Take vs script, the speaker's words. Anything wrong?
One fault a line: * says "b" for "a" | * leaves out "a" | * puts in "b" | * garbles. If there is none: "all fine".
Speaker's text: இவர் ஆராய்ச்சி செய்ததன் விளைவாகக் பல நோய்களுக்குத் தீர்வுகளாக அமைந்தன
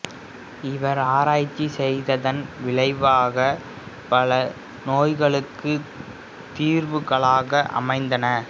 all fine